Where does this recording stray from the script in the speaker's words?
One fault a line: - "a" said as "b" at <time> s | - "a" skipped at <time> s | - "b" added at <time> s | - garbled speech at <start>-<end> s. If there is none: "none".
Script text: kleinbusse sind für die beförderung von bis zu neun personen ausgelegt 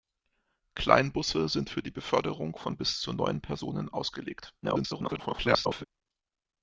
- garbled speech at 4.6-5.9 s